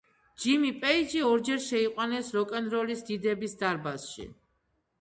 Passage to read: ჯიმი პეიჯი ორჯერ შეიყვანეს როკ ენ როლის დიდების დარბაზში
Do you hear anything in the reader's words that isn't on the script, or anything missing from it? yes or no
no